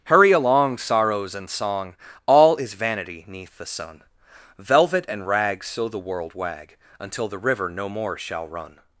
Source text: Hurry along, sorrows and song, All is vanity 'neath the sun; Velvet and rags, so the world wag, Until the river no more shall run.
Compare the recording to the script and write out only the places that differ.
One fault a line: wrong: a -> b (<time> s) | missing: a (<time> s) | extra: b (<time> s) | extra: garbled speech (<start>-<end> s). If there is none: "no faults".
no faults